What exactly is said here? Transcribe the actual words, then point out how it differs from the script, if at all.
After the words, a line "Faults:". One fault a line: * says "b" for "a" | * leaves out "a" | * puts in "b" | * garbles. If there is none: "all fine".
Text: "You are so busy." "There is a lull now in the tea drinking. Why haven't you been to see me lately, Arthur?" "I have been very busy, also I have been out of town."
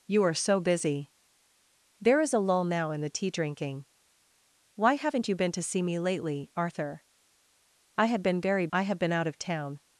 "You are so busy." "There is a lull now in the tea drinking. Why haven't you been to see me lately, Arthur?" "I have been very I have been out of town."
Faults:
* leaves out "busy also"